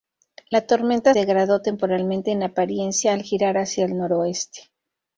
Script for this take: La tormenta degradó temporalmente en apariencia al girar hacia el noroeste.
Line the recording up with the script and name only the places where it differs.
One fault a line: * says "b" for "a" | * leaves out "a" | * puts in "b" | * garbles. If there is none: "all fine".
all fine